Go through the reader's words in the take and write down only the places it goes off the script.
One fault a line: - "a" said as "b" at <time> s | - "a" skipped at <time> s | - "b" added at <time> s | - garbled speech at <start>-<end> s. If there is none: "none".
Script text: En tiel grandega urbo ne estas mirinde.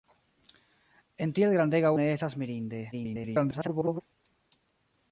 - "urbo" skipped at 1.9 s
- garbled speech at 2.9-4.0 s